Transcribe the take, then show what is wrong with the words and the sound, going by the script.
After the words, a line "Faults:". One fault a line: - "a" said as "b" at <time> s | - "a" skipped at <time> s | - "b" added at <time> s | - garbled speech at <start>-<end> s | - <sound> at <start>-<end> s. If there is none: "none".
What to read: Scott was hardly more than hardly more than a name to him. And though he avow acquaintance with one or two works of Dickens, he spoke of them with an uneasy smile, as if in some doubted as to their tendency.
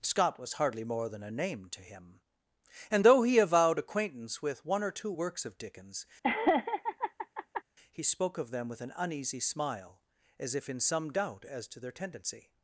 Scott was hardly more than a name to him. And though he avowed acquaintance with one or two works of Dickens, he spoke of them with an uneasy smile, as if in some doubt as to their tendency.
Faults:
- "hardly more than" skipped at 1.2 s
- "avow" said as "avowed" at 3.4 s
- laugh at 6.2-7.6 s
- "doubted" said as "doubt" at 11.1 s